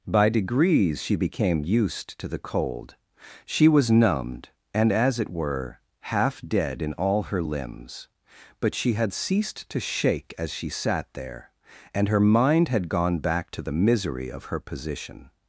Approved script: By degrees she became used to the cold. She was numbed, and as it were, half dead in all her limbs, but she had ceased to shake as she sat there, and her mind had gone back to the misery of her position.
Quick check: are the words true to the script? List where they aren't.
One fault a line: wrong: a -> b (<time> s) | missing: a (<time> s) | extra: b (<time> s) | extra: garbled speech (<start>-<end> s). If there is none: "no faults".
no faults